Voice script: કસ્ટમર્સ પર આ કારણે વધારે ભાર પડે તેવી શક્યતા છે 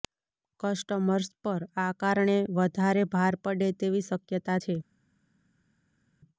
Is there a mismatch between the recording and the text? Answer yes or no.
no